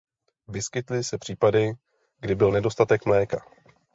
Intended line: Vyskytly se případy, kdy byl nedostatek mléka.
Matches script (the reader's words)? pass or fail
pass